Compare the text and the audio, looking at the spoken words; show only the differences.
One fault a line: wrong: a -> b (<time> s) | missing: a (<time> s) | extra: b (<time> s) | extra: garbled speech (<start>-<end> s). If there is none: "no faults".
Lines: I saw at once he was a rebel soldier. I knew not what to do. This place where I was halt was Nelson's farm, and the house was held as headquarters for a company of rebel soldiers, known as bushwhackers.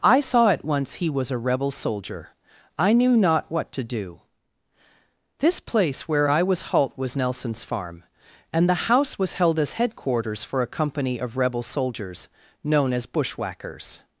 no faults